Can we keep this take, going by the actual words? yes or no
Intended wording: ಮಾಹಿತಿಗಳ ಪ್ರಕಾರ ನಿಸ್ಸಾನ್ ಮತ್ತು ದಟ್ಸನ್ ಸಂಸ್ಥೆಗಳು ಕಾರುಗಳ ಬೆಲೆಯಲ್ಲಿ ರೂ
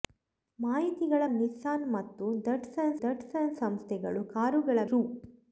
no